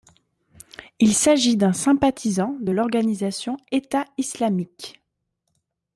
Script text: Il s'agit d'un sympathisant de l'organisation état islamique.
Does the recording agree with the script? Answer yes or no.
yes